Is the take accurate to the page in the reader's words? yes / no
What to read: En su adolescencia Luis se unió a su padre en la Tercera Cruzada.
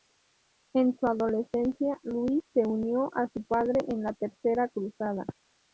yes